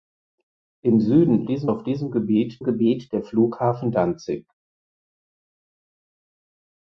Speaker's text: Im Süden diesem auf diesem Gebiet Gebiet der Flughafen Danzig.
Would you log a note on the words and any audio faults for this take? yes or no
no